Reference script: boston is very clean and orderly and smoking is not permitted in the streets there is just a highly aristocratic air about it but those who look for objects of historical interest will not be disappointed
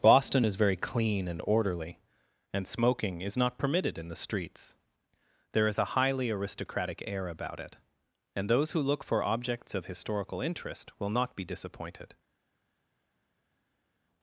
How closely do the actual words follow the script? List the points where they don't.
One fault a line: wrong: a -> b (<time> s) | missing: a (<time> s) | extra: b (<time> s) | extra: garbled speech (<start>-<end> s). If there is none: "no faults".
missing: just (5.8 s)
wrong: but -> and (8.4 s)